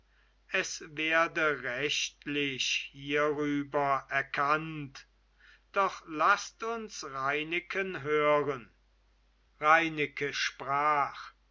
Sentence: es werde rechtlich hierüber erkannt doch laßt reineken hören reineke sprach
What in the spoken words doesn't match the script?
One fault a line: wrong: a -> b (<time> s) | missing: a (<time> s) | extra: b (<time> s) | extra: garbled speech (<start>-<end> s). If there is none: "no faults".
extra: uns (6.6 s)